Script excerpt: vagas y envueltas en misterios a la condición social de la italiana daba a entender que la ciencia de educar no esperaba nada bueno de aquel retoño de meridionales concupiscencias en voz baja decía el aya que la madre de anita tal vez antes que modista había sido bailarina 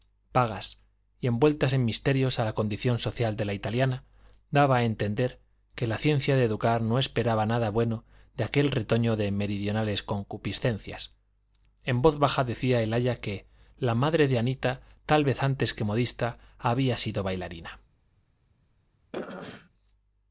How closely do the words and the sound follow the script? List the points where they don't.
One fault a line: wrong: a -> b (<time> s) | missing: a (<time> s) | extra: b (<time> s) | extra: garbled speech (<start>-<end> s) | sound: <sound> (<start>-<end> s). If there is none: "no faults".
sound: throat clearing (19.1-19.7 s)